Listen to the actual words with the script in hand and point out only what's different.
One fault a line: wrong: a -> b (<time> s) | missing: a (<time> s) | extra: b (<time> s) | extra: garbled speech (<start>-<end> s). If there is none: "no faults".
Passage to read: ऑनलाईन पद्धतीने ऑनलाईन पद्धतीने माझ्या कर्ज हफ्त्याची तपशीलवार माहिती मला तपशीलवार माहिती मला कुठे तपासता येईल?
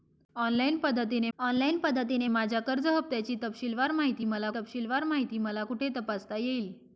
no faults